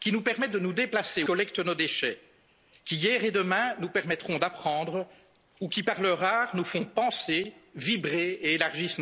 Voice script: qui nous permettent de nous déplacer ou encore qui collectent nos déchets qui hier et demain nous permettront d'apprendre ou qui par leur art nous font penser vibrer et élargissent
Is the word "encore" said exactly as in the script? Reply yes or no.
no